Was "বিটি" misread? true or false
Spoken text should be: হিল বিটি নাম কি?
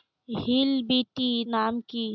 false